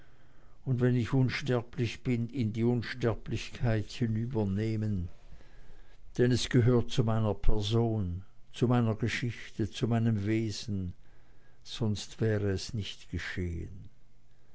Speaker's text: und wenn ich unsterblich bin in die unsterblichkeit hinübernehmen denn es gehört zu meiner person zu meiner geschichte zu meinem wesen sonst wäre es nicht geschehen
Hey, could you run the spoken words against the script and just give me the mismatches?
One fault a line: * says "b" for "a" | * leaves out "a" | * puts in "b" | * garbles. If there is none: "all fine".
all fine